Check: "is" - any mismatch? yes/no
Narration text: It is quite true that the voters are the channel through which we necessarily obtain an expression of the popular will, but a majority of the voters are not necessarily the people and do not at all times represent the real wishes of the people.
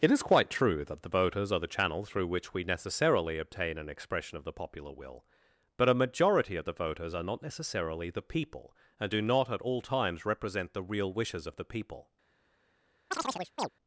no